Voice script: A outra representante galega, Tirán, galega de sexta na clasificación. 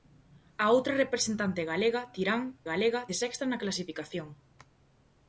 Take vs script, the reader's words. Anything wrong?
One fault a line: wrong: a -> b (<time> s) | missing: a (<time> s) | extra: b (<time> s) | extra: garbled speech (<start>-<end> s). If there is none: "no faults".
no faults